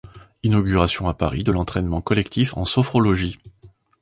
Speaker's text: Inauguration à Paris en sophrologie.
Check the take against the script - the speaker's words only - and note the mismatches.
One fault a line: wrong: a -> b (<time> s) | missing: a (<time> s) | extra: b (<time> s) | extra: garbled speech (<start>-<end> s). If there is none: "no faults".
extra: de l'entraînement collectif (1.4 s)